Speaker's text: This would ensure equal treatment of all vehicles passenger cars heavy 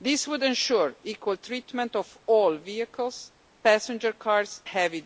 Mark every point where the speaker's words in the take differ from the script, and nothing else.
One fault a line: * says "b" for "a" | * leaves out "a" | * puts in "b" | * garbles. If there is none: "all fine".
all fine